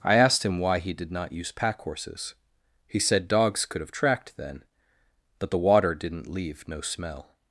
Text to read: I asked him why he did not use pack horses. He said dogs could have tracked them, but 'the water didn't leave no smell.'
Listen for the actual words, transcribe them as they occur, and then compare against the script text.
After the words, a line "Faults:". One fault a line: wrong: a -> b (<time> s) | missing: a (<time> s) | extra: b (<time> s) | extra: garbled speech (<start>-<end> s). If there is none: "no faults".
I asked him why he did not use pack horses. He said dogs could have tracked then, but 'the water didn't leave no smell.'
Faults:
wrong: them -> then (4.3 s)